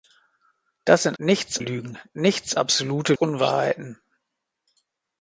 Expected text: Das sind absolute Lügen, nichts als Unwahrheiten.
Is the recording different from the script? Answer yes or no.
yes